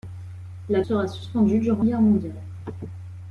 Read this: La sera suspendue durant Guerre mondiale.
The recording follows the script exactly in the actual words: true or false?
true